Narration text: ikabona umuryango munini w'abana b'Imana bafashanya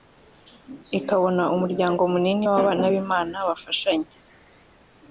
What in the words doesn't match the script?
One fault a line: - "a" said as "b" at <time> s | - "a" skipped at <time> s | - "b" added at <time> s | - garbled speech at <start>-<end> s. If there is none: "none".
none